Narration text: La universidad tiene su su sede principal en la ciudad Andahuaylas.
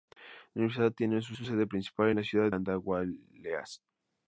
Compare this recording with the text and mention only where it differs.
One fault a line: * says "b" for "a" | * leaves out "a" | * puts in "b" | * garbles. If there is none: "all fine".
all fine